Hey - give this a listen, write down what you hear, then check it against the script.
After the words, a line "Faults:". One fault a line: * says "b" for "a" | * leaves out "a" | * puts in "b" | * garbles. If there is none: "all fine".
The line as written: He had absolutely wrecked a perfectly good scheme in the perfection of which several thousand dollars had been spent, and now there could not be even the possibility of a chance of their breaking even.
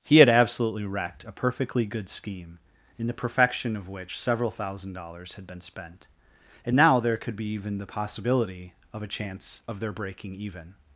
He had absolutely wrecked a perfectly good scheme in the perfection of which several thousand dollars had been spent, and now there could be even the possibility of a chance of their breaking even.
Faults:
* leaves out "not"